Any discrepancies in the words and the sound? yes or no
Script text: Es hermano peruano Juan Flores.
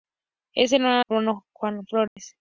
yes